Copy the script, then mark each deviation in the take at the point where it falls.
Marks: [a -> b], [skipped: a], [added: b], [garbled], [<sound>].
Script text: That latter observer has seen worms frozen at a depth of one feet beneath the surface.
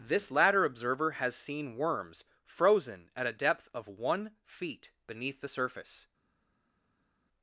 [That -> This] latter observer has seen worms frozen at a depth of one feet beneath the surface.